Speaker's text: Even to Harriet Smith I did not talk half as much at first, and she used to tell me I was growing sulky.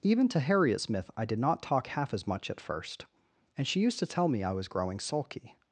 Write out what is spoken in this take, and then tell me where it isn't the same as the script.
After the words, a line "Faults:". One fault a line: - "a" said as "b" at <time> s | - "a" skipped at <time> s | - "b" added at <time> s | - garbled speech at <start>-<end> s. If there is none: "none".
Even to Harriet Smith I did not talk half as much at first, and she used to tell me I was growing sulky.
Faults:
none